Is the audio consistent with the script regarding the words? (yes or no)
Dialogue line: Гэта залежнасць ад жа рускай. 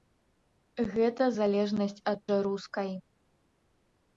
yes